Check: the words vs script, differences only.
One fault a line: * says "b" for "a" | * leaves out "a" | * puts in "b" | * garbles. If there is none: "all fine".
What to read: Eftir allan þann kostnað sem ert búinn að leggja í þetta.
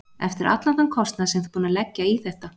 all fine